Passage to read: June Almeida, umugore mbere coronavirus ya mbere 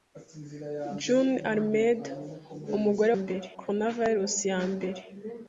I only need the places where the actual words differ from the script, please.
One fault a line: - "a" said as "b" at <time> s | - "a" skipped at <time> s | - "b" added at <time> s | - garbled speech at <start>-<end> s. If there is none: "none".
none